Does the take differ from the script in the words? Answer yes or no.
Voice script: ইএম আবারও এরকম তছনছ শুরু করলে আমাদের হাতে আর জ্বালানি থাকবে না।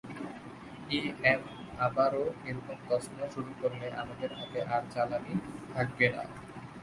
no